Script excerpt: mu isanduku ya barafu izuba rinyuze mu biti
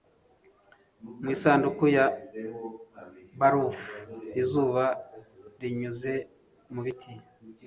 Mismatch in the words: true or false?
false